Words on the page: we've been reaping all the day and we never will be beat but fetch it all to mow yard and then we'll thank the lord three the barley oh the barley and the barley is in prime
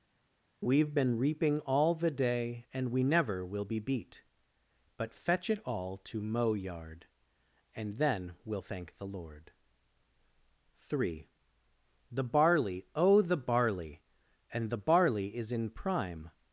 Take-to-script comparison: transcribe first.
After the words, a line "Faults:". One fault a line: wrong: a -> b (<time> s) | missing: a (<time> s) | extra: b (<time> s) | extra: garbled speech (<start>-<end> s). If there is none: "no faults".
we've been reaping all the day and we never will be beat but fetch it all to mow yard and then we'll thank the lord three the barley oh the barley and the barley is in prime
Faults:
no faults